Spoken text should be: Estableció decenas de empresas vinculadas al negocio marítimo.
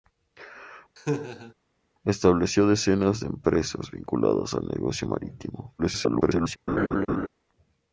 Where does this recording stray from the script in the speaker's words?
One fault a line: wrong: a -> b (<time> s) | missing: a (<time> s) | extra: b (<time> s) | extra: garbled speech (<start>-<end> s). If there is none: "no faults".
extra: garbled speech (5.8-6.6 s)